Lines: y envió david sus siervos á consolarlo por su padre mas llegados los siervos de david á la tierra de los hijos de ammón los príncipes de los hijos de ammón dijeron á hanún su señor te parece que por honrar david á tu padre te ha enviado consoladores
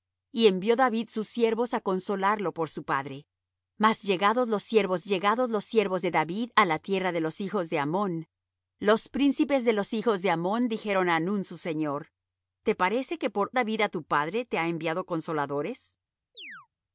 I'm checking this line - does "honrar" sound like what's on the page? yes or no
no